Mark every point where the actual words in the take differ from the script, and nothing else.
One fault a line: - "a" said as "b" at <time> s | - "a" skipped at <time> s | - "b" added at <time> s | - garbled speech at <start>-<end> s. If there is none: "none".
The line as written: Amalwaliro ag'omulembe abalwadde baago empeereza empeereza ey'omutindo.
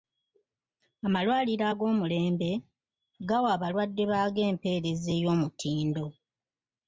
- "gawa" added at 3.3 s
- "empeereza" skipped at 5.1 s